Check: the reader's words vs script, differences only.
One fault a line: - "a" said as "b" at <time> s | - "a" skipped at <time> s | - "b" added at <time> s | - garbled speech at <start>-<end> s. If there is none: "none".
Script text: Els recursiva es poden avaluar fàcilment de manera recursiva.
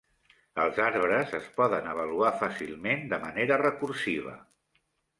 - "recursiva" said as "arbres" at 0.8 s